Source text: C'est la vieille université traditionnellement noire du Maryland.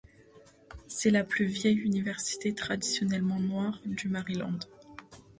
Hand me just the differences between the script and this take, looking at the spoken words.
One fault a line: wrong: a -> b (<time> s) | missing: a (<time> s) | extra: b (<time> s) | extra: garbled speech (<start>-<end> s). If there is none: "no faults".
extra: plus (1.2 s)